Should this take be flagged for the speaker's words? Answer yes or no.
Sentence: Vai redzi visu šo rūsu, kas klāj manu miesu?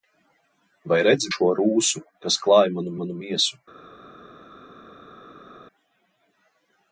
yes